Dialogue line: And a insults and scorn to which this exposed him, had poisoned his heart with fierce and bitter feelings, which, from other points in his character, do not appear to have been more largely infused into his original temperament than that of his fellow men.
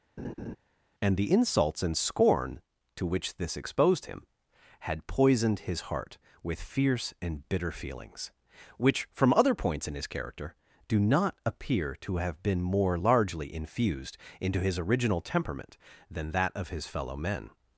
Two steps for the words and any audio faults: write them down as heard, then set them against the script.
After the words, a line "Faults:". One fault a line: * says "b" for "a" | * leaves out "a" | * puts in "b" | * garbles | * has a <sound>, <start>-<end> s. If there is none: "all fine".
And the insults and scorn to which this exposed him, had poisoned his heart with fierce and bitter feelings, which, from other points in his character, do not appear to have been more largely infused into his original temperament than that of his fellow men.
Faults:
* has a laugh, 0.2-0.6 s
* says "the" for "a"